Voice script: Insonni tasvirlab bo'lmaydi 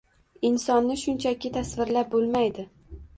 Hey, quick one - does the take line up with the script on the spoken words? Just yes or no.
no